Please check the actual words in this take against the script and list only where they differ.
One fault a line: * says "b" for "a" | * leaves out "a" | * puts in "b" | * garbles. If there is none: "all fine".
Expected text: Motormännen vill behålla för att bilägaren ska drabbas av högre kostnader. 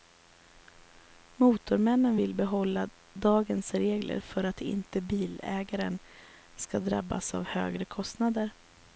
* puts in "dagens regler"
* puts in "inte"